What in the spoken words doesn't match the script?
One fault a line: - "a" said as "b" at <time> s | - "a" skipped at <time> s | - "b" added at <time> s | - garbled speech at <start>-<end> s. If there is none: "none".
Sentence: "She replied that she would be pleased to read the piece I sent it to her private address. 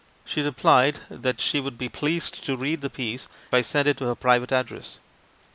none